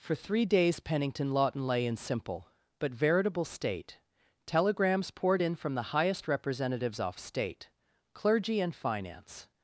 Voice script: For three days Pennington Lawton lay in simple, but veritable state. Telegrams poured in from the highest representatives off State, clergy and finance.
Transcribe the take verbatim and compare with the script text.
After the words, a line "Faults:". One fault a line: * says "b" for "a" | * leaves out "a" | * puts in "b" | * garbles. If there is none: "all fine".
For three days Pennington Lawton lay in simple, but veritable state. Telegrams poured in from the highest representatives off State, clergy and finance.
Faults:
all fine